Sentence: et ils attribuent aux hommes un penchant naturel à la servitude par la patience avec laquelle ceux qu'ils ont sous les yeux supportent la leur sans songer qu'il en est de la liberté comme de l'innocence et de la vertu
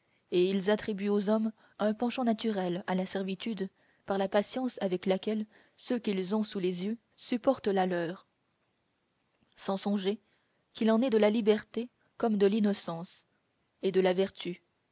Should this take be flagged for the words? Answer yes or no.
no